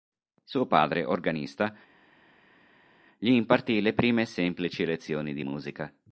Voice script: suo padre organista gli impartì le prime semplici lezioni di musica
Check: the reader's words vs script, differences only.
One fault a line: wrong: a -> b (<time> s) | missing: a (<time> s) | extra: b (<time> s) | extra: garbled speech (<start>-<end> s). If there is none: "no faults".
no faults